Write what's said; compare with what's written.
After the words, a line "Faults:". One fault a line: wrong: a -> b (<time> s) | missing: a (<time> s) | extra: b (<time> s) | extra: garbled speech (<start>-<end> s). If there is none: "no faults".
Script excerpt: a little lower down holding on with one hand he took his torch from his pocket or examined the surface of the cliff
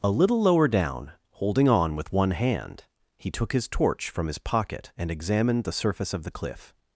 a little lower down holding on with one hand he took his torch from his pocket and examined the surface of the cliff
Faults:
wrong: or -> and (5.0 s)